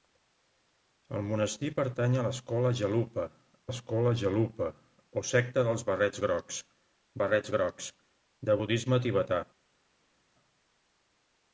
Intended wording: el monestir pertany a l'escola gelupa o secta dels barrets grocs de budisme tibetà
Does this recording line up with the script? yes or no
no